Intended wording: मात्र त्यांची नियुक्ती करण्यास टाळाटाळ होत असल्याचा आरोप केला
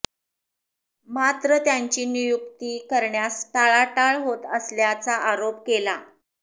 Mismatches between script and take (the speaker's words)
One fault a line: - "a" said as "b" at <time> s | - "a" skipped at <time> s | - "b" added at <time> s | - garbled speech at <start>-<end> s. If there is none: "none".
none